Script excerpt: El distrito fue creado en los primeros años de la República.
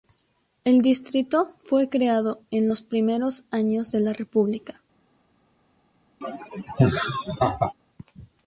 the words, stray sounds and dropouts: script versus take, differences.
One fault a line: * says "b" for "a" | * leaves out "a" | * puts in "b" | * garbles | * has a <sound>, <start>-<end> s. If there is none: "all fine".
* has a laugh, 6.2-7.7 s